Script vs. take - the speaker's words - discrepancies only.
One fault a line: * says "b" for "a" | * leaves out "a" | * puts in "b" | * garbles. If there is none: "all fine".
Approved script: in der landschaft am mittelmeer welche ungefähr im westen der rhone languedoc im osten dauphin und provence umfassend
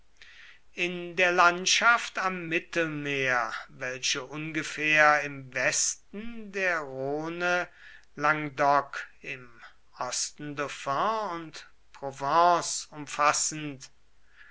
all fine